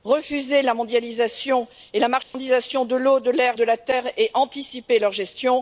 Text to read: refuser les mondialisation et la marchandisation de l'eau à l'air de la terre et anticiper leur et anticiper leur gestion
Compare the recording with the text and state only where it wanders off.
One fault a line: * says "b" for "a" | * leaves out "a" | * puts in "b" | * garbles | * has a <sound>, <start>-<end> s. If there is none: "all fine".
* says "la" for "les"
* has a dropout, 2.2-2.3 s
* says "de" for "à"
* leaves out "et anticiper leur"